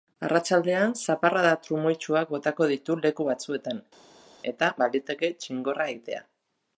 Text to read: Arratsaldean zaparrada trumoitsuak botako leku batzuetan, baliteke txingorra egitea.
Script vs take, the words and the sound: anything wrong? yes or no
yes